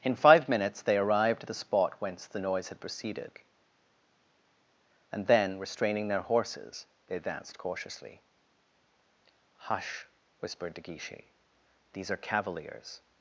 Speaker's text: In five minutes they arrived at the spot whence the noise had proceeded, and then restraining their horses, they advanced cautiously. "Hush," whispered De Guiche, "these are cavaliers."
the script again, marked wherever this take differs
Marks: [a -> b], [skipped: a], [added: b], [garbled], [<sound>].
In five minutes they arrived at the spot whence the noise had proceeded, and then restraining their horses, they advanced cautiously. "Hush," whispered De Guiche, "these are cavaliers."